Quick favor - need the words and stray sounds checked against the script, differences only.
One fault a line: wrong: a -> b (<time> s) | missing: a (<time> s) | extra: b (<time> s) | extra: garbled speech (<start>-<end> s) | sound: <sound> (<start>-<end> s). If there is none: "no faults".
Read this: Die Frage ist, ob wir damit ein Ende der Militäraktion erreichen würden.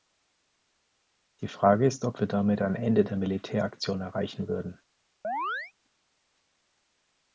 sound: chirp (5.2-5.7 s)